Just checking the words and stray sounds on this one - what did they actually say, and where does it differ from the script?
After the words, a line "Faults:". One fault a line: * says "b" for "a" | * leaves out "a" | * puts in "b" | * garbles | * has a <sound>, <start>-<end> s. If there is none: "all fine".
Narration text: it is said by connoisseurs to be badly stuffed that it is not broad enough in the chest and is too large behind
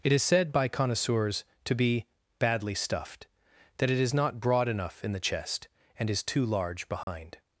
it is said by connoisseurs to be badly stuffed that it is not broad enough in the chest and is too large behind
Faults:
* has a dropout, 7.0-7.1 s